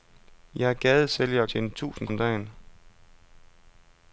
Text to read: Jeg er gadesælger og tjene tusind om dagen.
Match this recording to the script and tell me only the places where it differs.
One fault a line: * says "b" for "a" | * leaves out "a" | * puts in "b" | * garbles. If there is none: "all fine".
all fine